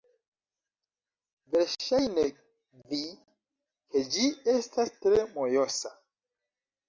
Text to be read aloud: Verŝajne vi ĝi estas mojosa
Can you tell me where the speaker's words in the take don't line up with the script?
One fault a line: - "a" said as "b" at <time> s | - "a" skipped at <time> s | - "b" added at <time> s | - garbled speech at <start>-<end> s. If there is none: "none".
- "ke" added at 3.9 s
- "tre" added at 5.1 s